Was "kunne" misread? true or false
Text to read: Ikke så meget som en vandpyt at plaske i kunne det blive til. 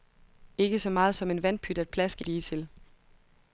true